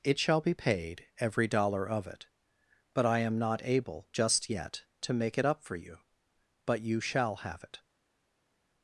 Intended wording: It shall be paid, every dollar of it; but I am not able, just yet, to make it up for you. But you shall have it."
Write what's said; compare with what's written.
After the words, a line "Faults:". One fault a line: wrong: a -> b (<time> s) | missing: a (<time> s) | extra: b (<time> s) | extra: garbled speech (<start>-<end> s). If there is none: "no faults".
It shall be paid, every dollar of it; but I am not able, just yet, to make it up for you. But you shall have it."
Faults:
no faults